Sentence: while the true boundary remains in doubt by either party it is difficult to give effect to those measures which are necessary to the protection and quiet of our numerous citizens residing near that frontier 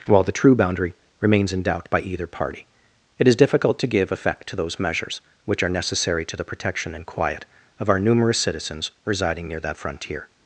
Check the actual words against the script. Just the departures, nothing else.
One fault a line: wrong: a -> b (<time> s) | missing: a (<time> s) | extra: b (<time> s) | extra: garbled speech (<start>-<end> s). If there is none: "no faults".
no faults